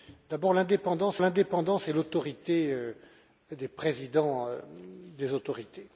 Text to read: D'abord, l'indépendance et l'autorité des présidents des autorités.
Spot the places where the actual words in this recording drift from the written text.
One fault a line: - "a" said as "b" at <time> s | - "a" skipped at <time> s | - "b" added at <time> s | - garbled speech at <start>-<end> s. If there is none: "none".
- "l'indépendance" added at 1.2 s